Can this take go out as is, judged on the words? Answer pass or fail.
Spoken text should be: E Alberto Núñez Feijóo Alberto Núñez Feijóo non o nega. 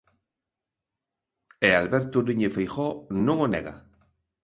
fail